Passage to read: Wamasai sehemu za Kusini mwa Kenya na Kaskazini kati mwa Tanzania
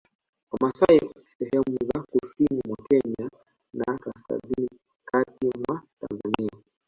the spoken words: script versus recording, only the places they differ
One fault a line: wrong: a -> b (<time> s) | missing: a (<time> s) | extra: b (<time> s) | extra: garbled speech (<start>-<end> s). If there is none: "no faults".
no faults